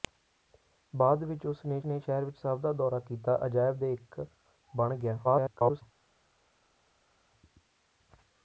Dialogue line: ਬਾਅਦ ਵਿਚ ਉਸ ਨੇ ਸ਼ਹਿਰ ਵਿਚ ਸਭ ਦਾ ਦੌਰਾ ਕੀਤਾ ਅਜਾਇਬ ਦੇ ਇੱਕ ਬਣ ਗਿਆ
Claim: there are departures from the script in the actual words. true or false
true